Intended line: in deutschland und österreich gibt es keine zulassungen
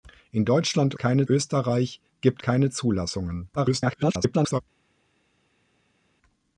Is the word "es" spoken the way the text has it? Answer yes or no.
no